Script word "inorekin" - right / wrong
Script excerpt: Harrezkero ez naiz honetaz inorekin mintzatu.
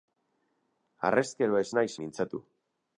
wrong